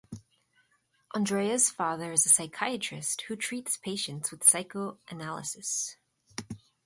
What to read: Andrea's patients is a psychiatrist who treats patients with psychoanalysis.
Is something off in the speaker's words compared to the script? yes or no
yes